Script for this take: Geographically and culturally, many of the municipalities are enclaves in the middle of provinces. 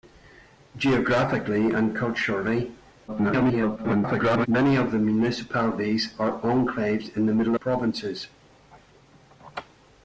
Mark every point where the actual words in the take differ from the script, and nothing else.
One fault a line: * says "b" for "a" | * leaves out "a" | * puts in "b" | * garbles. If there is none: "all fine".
* garbles
* leaves out "of"